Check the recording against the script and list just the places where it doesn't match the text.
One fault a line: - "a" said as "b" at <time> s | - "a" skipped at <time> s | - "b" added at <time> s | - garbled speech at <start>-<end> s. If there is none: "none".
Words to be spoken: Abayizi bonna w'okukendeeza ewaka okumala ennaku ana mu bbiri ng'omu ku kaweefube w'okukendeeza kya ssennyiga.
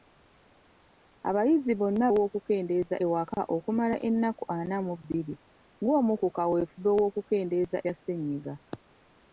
none